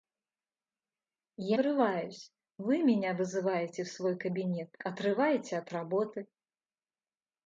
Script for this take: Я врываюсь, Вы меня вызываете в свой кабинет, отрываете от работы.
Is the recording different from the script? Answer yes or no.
no